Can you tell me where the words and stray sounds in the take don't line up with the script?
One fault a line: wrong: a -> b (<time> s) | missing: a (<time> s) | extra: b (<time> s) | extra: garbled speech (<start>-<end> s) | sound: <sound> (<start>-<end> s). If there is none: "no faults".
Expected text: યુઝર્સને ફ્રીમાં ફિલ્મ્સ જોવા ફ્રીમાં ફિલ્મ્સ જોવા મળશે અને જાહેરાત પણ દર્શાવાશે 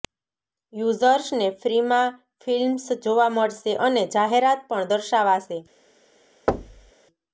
missing: ફ્રીમાં ફિલ્મ્સ જોવા (3.3 s)
sound: thud (6.5-6.9 s)